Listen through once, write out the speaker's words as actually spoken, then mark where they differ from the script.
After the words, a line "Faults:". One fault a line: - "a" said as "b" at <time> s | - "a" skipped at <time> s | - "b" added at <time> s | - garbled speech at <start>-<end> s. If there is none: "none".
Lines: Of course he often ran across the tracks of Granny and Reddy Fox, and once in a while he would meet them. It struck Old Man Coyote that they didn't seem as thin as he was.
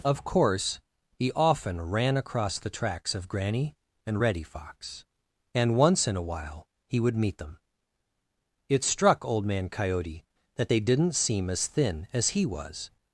Of course he often ran across the tracks of Granny and Reddy Fox, and once in a while he would meet them. It struck Old Man Coyote that they didn't seem as thin as he was.
Faults:
none